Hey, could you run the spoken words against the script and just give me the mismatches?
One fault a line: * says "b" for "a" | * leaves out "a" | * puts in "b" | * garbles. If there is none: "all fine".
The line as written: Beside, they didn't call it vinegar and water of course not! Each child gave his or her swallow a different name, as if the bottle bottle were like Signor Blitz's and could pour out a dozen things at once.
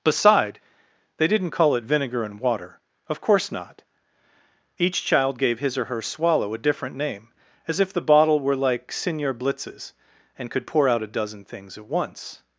* leaves out "bottle"